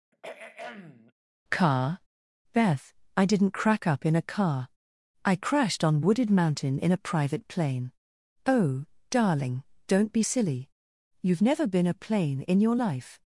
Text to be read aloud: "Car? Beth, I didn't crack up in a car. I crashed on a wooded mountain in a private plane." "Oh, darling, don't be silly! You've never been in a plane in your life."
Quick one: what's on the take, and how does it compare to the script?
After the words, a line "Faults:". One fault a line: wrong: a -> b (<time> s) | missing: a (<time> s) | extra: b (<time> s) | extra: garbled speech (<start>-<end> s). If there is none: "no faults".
"Car? Beth, I didn't crack up in a car. I crashed on wooded mountain in a private plane." "Oh, darling, don't be silly! You've never been a plane in your life."
Faults:
missing: a (6.0 s)
missing: in (11.9 s)